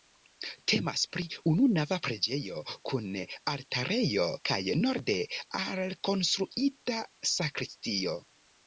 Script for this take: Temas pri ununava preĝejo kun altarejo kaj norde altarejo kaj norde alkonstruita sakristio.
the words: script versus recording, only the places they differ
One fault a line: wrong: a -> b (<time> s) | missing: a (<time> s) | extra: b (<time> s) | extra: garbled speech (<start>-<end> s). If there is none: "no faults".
missing: altarejo kaj norde (5.2 s)